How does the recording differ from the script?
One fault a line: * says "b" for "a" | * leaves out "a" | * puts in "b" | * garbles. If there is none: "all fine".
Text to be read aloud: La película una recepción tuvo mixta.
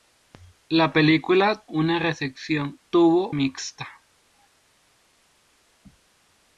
all fine